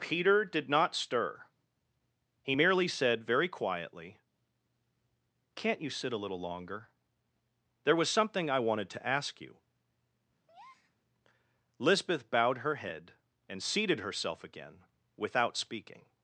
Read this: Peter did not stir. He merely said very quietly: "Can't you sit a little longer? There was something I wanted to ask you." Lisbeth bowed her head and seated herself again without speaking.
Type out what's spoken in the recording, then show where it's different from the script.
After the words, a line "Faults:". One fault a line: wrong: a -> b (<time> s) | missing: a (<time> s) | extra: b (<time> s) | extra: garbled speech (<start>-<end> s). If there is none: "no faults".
Peter did not stir. He merely said very quietly: "Can't you sit a little longer? There was something I wanted to ask you." Lisbeth bowed her head and seated herself again without speaking.
Faults:
no faults